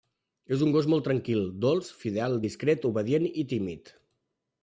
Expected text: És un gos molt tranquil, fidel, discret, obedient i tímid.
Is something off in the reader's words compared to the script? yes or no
yes